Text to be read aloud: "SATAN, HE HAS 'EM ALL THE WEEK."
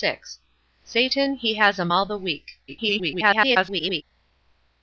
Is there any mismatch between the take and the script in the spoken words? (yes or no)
yes